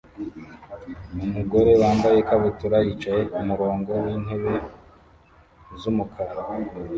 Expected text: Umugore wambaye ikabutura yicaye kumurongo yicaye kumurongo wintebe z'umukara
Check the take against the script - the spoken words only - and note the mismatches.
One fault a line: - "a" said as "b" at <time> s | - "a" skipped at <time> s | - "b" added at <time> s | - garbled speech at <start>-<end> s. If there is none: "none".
- "yicaye kumurongo" skipped at 3.9 s